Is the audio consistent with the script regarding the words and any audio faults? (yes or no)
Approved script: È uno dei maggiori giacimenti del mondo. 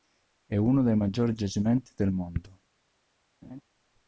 no